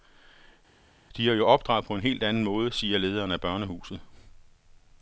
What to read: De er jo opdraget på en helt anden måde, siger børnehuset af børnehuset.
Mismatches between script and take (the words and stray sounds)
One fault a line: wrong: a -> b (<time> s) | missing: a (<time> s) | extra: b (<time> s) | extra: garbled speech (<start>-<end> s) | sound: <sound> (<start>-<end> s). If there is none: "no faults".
wrong: børnehuset -> lederen (3.0 s)